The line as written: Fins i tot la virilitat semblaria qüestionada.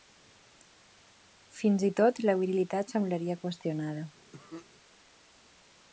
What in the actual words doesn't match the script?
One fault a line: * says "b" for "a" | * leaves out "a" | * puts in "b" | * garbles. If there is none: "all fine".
all fine